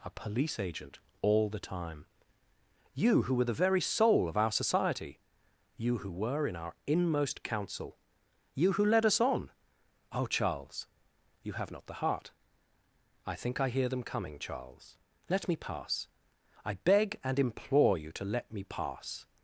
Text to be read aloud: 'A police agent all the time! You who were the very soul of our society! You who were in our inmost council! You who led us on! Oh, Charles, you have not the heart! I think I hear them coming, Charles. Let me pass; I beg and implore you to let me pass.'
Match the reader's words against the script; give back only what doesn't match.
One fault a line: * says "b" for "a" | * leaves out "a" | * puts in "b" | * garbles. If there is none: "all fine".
all fine